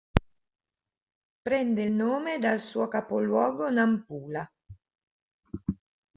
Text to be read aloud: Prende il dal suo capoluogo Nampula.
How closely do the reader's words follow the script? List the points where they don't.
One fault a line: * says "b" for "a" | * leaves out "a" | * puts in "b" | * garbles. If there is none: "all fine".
* puts in "nome"